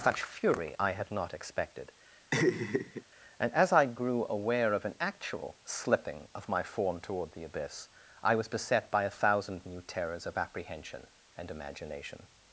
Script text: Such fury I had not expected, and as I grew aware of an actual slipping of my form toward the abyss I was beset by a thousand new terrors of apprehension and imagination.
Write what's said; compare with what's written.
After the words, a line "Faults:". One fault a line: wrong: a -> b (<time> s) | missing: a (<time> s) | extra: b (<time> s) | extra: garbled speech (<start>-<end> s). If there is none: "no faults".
Such fury I had not expected, and as I grew aware of an actual slipping of my form toward the abyss I was beset by a thousand new terrors of apprehension and imagination.
Faults:
no faults